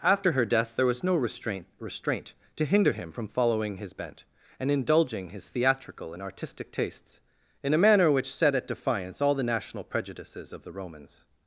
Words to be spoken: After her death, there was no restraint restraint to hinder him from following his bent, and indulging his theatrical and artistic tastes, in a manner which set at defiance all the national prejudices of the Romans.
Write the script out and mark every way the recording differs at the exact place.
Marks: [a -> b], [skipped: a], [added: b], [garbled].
After her death, there was no restraint restraint to hinder him from following his bent, and indulging his theatrical and artistic tastes, in a manner which set at defiance all the national prejudices of the Romans.